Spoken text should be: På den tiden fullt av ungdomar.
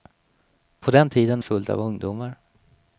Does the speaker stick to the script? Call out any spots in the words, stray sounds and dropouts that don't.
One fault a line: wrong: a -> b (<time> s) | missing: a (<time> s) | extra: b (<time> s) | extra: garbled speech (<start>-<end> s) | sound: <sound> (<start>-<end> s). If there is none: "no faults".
no faults